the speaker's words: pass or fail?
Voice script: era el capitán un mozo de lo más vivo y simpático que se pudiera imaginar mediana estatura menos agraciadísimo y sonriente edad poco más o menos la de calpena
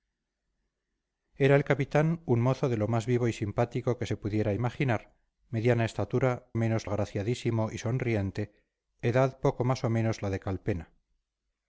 pass